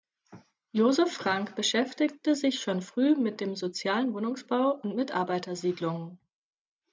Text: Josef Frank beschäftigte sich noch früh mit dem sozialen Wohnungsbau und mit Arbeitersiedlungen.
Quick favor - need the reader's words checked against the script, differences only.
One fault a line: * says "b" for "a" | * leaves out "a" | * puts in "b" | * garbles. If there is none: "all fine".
* says "schon" for "noch"